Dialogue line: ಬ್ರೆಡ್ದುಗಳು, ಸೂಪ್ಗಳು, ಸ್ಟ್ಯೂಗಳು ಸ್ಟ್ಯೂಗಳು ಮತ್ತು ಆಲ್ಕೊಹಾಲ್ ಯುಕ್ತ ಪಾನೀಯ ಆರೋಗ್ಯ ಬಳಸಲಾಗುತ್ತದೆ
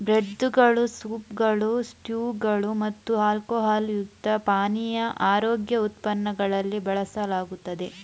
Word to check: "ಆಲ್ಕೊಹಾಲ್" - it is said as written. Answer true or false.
true